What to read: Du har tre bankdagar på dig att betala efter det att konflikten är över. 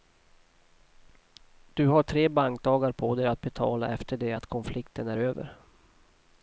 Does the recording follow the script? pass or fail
pass